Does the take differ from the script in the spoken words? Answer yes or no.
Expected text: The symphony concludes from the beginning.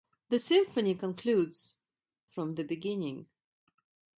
no